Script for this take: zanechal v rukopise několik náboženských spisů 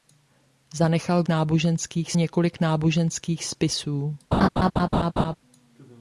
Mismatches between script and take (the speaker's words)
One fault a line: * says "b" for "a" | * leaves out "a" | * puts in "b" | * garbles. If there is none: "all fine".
* says "náboženských" for "rukopise"